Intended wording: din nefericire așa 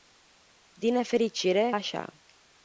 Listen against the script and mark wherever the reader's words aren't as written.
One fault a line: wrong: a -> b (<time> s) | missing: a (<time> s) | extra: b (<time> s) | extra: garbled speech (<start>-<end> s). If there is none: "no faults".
no faults